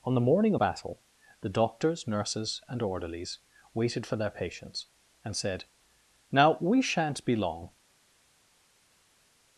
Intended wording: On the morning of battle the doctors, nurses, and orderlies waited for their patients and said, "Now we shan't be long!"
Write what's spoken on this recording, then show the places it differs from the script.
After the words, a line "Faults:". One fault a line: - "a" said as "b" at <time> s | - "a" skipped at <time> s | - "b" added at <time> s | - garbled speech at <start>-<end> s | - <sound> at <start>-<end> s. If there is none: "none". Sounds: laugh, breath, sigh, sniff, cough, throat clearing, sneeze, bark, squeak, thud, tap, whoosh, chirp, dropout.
On the morning battle the doctors, nurses, and orderlies waited for their patients and said, "Now we shan't be long!"
Faults:
- "of" skipped at 0.6 s